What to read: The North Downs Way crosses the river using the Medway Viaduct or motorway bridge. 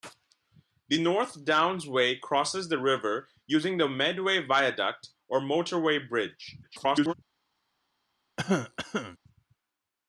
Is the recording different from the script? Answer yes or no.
yes